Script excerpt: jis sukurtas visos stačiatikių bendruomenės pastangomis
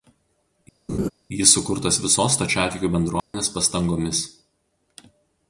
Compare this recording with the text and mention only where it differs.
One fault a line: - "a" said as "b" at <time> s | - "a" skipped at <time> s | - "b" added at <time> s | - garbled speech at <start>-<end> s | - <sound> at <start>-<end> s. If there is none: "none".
- laugh at 0.9-1.1 s
- dropout at 3.2-3.3 s